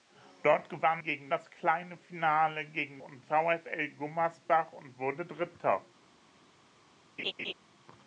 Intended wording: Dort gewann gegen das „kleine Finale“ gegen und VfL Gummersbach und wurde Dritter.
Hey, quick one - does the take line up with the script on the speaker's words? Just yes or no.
yes